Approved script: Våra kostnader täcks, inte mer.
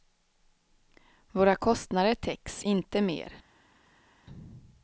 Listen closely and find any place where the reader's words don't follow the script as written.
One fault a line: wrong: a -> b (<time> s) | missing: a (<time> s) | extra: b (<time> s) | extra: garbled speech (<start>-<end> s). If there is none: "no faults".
no faults